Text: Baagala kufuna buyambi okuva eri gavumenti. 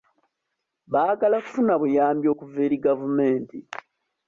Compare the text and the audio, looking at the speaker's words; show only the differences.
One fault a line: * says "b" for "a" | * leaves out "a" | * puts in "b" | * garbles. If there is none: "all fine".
all fine